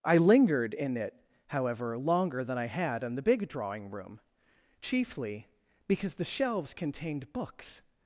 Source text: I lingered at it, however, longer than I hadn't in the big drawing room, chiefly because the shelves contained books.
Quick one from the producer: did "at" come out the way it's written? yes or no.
no